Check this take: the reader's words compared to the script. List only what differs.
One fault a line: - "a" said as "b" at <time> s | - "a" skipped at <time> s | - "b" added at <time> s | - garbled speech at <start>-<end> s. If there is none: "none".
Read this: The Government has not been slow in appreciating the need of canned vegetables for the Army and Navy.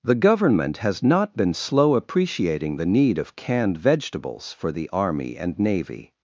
- "in" skipped at 1.9 s